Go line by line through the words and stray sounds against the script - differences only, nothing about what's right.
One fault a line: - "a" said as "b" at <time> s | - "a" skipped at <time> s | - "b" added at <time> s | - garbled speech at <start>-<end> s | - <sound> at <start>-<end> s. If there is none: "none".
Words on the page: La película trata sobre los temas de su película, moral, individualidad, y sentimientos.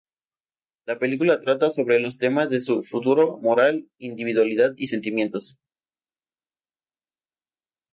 - "película" said as "futuro" at 2.8 s